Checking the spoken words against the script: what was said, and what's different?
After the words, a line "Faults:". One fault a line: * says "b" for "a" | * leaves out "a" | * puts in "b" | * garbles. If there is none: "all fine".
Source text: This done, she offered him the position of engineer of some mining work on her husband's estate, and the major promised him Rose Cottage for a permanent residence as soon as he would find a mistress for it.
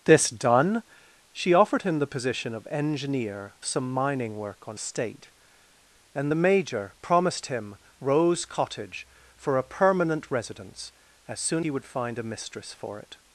This done, she offered him the position of engineer some mining work on estate, and the major promised him Rose Cottage for a permanent residence as soon he would find a mistress for it.
Faults:
* leaves out "of"
* leaves out "her husband's"
* leaves out "as"